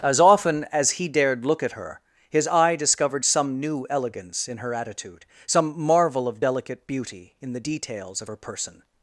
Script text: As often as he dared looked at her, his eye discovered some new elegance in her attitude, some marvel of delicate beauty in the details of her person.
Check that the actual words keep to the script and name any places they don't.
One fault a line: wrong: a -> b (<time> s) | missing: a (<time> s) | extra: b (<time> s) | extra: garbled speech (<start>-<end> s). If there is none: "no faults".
wrong: looked -> look (1.4 s)